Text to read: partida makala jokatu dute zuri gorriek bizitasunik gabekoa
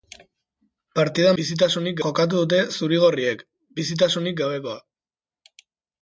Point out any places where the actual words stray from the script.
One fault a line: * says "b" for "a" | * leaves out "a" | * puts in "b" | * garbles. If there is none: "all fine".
* says "bizitasunik" for "makala"